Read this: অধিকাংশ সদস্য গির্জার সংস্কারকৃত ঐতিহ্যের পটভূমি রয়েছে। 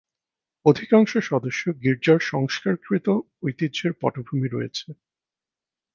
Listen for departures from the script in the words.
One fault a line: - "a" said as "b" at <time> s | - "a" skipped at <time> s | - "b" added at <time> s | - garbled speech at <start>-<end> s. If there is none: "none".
none